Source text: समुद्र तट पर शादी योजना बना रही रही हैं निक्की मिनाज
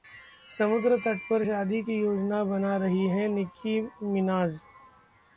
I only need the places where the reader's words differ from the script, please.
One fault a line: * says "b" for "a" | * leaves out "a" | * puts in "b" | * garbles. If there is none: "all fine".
* puts in "की"
* leaves out "रही"